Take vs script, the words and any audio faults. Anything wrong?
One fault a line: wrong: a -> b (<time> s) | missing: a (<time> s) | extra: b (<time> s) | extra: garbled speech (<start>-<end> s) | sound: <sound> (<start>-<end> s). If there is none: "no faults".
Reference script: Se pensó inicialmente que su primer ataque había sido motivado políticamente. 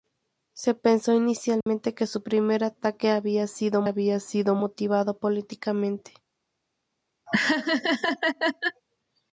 sound: dropout (1.6-1.7 s)
extra: había sido (3.8 s)
sound: laugh (7.3-8.8 s)